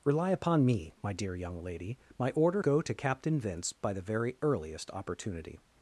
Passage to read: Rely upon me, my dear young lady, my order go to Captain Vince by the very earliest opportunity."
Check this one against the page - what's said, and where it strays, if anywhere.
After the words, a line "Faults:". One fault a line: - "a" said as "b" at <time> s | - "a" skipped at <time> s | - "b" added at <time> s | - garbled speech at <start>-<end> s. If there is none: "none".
Rely upon me, my dear young lady, my order go to Captain Vince by the very earliest opportunity."
Faults:
none